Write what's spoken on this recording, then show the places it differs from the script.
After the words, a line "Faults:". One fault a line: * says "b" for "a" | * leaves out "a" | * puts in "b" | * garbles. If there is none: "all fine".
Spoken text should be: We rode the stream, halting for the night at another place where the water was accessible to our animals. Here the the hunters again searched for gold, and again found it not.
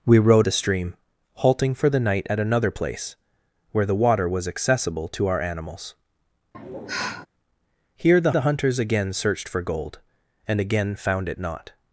We rode the stream, halting for the night at another place where the water was accessible to our animals. Here the the hunters again searched for gold, and again found it not.
Faults:
all fine